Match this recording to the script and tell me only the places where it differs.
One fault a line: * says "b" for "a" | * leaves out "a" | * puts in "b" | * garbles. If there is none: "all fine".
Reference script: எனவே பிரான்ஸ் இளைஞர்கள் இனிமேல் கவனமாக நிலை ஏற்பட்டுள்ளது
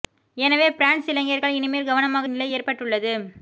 all fine